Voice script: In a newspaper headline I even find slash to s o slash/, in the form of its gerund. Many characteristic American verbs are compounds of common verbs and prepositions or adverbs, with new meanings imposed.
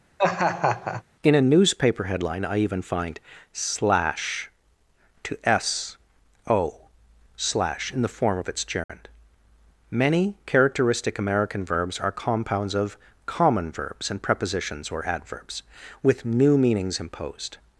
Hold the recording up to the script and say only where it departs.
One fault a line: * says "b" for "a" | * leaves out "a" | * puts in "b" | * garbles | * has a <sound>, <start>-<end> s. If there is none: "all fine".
* has a laugh, 0.2-1.0 s
* has a dropout, 8.8-8.9 s